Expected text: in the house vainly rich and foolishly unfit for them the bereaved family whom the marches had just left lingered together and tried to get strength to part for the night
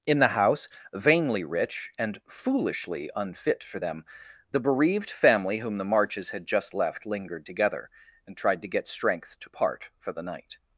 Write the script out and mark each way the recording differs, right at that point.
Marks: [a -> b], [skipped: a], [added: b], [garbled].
in the house vainly rich and foolishly unfit for them the bereaved family whom the marches had just left lingered together and tried to get strength to part for the night